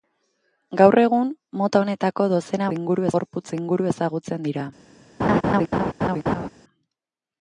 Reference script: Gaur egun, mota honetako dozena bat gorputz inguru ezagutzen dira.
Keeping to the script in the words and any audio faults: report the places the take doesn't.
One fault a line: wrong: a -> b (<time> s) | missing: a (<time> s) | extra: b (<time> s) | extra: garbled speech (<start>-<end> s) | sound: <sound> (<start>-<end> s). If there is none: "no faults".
wrong: bat -> inguru (2.8 s)
sound: laugh (5.2-6.5 s)